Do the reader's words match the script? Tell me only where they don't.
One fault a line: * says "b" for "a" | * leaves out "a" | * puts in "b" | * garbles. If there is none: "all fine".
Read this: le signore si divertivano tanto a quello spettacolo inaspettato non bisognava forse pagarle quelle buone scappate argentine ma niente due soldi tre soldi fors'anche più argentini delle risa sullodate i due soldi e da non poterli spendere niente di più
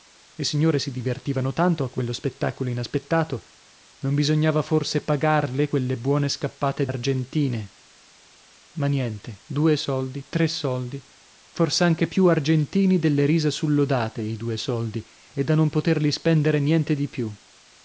all fine